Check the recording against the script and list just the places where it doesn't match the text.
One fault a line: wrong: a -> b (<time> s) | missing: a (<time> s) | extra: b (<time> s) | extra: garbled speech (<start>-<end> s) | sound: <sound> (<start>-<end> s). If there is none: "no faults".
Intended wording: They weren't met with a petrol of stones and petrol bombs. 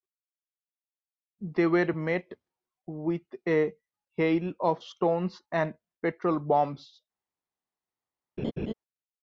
wrong: weren't -> were (1.7 s)
wrong: petrol -> hail (4.1 s)
sound: laugh (8.4-8.7 s)